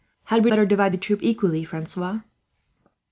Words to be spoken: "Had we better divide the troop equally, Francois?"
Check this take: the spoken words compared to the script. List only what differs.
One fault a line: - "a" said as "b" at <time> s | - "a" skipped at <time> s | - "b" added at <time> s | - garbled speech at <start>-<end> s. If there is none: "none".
none